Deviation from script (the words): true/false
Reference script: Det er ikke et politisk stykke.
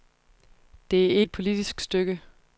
true